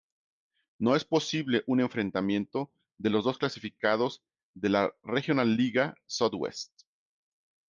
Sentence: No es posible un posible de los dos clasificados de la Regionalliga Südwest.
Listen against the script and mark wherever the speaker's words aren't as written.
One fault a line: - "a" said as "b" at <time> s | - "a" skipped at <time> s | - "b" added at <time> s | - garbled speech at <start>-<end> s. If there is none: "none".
- "posible" said as "enfrentamiento" at 1.8 s